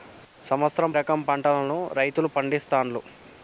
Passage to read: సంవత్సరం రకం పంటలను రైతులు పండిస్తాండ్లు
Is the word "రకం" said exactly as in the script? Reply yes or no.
yes